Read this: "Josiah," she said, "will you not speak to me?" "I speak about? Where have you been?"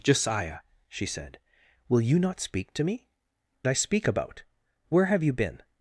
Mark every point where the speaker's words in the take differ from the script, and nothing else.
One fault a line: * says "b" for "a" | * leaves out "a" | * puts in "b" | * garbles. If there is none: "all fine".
all fine